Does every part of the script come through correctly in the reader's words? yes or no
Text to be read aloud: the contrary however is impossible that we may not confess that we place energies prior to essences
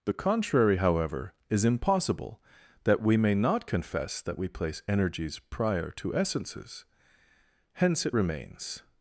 no